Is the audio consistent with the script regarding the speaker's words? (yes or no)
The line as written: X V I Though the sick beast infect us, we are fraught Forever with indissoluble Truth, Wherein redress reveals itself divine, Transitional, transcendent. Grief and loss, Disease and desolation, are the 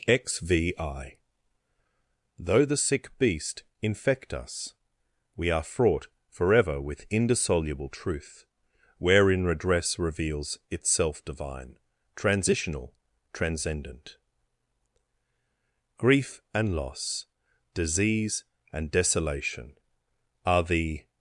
yes